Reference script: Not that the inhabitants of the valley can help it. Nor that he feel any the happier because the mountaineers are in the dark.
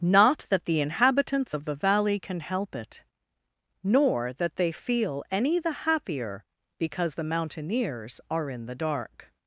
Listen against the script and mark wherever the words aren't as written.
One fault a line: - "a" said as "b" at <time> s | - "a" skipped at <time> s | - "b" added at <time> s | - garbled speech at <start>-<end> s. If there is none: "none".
- "he" said as "they" at 4.6 s